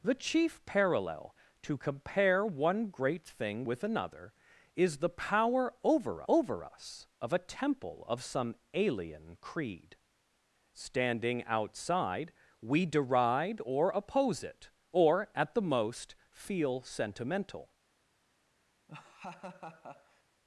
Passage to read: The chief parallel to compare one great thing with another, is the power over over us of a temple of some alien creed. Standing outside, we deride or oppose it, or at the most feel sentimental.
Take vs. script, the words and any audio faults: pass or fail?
fail